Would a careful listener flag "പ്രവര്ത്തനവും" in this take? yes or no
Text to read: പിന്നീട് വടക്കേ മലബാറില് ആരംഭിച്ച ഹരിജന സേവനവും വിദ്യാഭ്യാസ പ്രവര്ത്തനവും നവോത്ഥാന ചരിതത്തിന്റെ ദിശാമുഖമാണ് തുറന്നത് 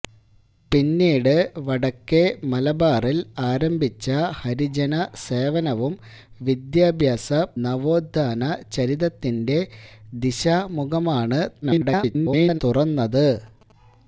yes